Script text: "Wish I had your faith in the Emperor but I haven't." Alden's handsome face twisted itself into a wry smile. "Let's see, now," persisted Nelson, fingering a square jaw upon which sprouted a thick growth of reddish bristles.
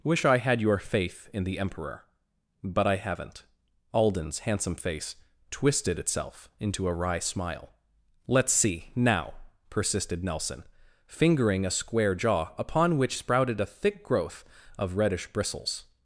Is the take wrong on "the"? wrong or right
right